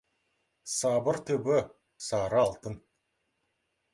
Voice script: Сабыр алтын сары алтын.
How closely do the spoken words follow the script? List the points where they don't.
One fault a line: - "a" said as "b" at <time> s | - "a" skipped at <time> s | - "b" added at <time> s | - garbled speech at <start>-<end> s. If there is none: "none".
- "алтын" said as "түбі" at 1.3 s